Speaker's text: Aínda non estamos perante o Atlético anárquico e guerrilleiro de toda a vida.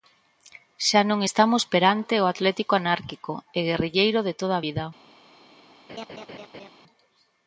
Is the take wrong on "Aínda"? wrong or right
wrong